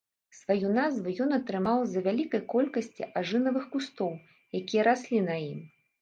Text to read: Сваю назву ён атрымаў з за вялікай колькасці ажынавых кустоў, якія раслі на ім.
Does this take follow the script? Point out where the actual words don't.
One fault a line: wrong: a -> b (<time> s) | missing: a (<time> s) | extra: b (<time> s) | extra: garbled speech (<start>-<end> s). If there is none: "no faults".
no faults